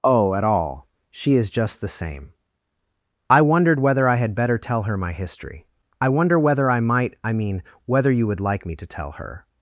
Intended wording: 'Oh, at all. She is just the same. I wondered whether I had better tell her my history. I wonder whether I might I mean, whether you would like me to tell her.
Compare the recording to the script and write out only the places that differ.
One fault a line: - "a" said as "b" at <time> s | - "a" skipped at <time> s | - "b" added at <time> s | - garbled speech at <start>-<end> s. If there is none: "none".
none